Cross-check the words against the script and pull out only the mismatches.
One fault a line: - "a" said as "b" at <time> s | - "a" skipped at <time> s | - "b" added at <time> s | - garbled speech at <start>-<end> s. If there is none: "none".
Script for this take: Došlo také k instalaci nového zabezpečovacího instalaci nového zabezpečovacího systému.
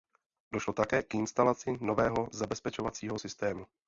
- "instalaci nového zabezpečovacího" skipped at 3.2 s